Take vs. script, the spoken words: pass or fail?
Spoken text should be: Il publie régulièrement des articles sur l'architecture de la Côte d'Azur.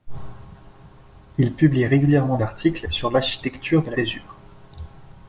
fail